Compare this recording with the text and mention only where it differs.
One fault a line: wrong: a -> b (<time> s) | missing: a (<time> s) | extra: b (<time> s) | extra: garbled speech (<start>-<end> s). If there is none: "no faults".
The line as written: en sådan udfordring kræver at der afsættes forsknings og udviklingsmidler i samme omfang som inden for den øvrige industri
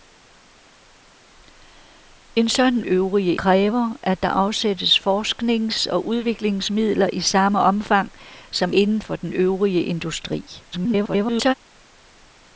wrong: udfordring -> øvrige (2.8 s)
extra: garbled speech (10.7-11.5 s)